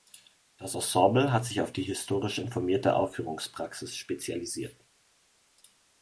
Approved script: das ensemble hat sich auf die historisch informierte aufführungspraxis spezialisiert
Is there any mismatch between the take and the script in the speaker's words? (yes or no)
no